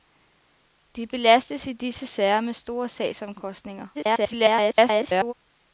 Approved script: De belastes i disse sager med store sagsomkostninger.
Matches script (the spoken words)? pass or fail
fail